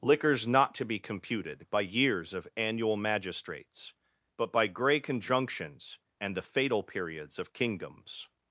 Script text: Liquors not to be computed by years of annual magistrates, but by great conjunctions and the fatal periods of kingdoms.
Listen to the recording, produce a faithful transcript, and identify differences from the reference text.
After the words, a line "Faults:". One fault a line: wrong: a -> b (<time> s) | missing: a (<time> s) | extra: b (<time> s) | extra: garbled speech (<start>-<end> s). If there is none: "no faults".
Liquors not to be computed by years of annual magistrates, but by grey conjunctions and the fatal periods of kingdoms.
Faults:
wrong: great -> grey (4.7 s)